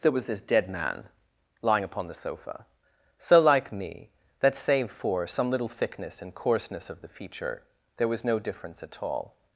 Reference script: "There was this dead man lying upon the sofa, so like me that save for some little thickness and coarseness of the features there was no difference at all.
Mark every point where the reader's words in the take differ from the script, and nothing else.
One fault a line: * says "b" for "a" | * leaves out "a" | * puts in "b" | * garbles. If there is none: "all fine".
* says "feature" for "features"